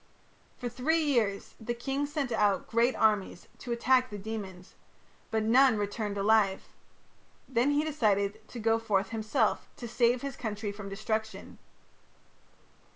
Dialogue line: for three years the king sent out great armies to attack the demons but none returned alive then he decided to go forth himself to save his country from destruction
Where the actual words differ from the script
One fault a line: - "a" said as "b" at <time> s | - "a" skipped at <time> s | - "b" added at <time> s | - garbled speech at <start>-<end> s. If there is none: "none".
none